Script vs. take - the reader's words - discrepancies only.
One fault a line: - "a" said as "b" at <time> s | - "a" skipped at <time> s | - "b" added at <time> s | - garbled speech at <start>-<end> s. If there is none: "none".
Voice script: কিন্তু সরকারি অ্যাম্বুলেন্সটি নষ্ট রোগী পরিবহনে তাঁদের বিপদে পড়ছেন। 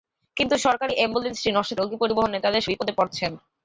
none